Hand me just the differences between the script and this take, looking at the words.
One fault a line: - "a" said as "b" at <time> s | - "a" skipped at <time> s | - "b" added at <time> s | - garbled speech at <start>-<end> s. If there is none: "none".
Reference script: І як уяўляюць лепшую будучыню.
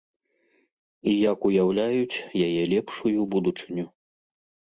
- "яе" added at 2.5 s